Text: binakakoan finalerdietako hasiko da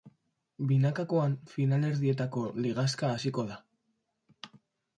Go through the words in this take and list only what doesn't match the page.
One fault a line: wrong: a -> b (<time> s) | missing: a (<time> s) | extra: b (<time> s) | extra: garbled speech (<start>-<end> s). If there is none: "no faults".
extra: ligaxka (2.7 s)